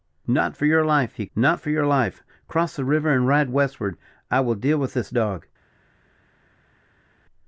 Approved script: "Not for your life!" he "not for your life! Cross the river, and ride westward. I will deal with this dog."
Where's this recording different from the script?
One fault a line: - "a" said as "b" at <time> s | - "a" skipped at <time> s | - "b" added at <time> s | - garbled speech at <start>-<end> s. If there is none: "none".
none